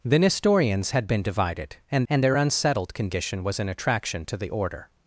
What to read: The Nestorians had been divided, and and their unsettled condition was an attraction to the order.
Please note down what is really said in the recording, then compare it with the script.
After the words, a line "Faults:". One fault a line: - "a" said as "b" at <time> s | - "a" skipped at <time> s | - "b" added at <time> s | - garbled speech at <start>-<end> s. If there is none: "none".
The Nestorians had been divided, and and their unsettled condition was an attraction to the order.
Faults:
none